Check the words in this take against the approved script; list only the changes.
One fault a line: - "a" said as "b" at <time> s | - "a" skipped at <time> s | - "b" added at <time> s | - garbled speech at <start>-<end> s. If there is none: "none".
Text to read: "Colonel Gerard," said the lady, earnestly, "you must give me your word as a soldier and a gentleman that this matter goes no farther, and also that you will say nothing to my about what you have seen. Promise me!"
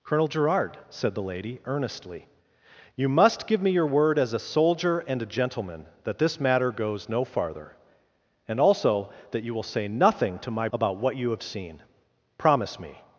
none